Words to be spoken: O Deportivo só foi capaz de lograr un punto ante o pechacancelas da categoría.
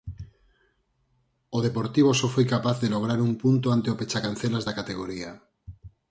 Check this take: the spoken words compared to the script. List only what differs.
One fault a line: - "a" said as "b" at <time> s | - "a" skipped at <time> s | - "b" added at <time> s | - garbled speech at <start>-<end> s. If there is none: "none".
none